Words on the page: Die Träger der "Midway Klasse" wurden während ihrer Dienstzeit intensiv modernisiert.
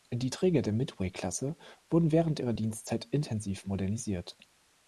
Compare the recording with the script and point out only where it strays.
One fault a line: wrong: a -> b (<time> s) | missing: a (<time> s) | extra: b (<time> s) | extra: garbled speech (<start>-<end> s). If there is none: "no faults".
no faults